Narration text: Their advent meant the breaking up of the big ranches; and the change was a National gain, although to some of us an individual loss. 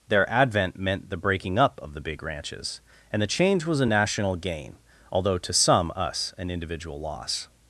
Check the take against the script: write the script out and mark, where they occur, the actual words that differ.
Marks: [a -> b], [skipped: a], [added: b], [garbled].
Their advent meant the breaking up of the big ranches; and the change was a National gain, although to some [skipped: of] us an individual loss.